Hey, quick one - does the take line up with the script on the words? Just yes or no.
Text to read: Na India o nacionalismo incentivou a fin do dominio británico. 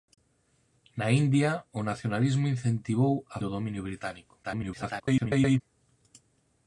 no